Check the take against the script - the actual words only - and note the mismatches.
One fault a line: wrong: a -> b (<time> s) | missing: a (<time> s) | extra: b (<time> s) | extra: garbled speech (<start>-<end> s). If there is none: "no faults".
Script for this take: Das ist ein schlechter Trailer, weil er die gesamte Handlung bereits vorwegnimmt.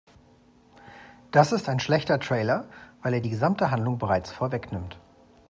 no faults